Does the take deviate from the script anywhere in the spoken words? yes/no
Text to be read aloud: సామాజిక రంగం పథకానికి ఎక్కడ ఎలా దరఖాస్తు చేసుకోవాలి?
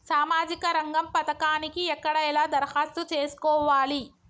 no